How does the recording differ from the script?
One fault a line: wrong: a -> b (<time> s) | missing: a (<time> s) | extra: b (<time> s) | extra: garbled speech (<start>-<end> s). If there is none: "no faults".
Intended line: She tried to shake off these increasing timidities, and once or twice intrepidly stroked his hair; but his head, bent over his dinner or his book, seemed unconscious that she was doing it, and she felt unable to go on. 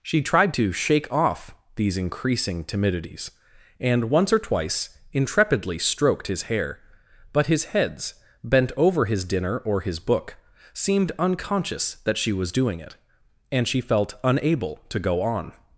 wrong: head -> heads (7.6 s)